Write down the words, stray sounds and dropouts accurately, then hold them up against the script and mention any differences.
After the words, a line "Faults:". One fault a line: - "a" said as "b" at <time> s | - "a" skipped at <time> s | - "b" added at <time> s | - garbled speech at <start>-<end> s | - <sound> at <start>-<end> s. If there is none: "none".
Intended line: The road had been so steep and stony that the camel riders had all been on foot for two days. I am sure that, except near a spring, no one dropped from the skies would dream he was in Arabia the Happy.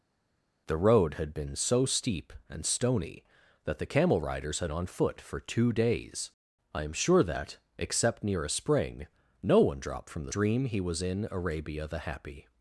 The road had been so steep and stony that the camel riders had on foot for two days. I am sure that, except near a spring, no one dropped from the dream he was in Arabia the Happy.
Faults:
- "all been" skipped at 4.7 s
- "skies would" skipped at 10.3 s